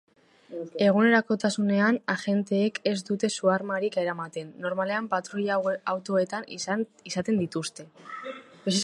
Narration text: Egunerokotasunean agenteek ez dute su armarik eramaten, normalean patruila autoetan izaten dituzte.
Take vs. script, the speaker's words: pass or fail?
pass